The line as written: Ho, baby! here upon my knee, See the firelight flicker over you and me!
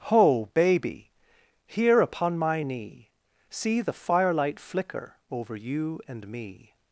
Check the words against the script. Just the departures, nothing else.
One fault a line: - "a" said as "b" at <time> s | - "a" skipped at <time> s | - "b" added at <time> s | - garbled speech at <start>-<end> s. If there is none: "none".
none